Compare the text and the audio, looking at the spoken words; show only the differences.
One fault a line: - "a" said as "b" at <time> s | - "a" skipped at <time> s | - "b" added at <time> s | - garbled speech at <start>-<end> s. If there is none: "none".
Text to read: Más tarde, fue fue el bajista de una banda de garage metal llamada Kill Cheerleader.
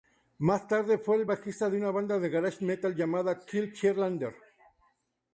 - "fue" skipped at 1.2 s